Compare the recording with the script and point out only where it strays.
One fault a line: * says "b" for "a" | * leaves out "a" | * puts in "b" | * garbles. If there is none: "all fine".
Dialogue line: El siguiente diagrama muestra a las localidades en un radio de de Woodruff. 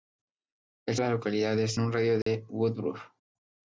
* leaves out "siguiente diagrama muestra"
* leaves out "en"